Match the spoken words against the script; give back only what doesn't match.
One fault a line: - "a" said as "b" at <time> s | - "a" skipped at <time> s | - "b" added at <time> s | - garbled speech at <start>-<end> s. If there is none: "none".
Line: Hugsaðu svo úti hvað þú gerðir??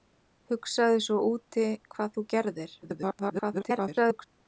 - garbled speech at 2.8-4.2 s